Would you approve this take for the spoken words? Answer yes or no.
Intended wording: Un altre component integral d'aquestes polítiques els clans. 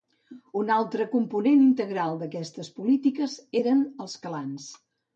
no